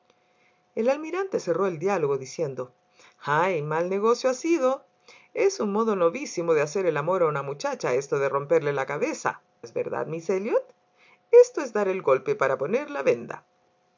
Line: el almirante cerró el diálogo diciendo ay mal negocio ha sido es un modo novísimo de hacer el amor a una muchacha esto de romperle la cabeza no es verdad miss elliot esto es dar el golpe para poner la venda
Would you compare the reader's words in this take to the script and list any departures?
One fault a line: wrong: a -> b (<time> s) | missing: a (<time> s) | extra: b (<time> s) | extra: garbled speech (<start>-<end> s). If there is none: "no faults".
missing: no (9.4 s)